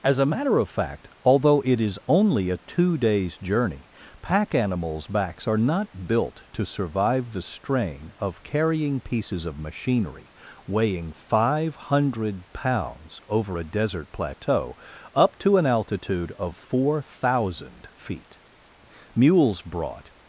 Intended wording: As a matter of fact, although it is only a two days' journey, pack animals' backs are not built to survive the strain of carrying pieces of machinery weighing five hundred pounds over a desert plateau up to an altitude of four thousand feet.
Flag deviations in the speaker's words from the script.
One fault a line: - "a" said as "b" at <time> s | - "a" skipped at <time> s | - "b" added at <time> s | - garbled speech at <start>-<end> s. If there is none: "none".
- "Mules brought" added at 19.1 s